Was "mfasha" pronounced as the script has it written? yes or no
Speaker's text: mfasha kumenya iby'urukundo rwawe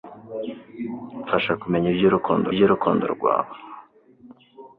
yes